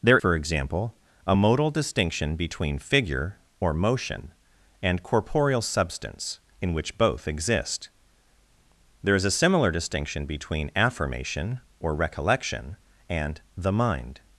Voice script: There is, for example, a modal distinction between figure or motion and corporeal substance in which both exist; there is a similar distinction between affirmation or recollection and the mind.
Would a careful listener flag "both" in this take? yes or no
no